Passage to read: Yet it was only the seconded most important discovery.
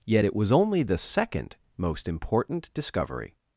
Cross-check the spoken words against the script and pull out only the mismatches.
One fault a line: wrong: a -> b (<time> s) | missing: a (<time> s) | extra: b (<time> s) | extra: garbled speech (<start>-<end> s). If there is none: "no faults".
wrong: seconded -> second (1.0 s)